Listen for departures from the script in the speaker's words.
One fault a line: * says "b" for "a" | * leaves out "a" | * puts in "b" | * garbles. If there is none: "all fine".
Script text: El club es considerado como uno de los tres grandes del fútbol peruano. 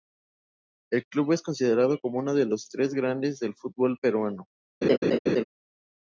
all fine